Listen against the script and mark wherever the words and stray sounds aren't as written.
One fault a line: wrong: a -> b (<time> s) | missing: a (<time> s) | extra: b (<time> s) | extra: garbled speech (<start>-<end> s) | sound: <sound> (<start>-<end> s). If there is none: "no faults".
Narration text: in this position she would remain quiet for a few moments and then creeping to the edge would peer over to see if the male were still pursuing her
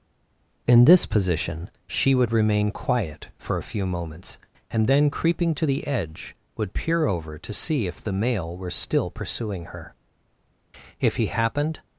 extra: if he happened (11.0 s)